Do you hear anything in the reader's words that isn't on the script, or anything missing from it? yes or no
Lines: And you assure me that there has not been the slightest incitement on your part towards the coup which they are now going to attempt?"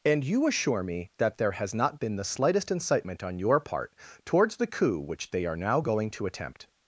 no